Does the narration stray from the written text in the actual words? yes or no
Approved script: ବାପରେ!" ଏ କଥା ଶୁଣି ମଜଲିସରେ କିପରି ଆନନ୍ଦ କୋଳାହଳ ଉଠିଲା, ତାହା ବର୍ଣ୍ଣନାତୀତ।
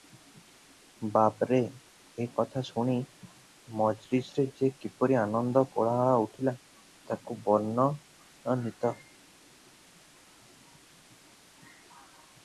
yes